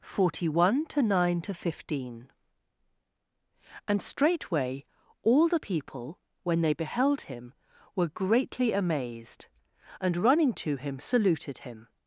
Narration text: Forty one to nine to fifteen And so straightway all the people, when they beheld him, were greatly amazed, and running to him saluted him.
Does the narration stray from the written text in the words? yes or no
yes